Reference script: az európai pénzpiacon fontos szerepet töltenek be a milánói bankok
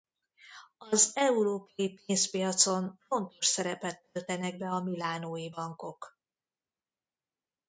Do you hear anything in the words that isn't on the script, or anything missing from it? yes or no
no